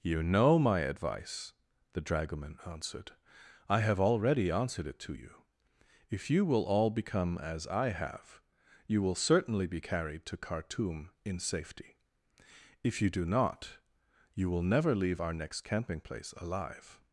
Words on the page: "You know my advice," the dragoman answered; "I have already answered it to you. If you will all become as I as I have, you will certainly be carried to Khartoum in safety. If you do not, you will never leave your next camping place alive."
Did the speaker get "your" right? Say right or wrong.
wrong